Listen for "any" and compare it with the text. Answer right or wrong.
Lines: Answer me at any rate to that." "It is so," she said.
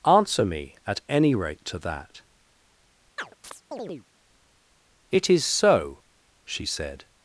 right